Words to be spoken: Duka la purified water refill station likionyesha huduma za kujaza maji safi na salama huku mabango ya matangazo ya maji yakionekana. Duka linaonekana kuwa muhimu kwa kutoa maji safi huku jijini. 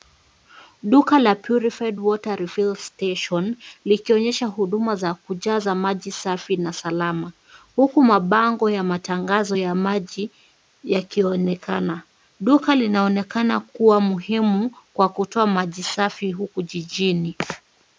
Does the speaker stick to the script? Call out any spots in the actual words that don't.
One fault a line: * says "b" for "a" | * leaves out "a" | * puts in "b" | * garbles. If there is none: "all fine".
all fine